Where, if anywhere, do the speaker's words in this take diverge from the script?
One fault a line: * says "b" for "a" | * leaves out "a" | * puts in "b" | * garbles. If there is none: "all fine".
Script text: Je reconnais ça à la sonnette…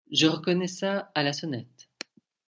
all fine